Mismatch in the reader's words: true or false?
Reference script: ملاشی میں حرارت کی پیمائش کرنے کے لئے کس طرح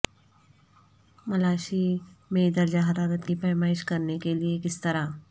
true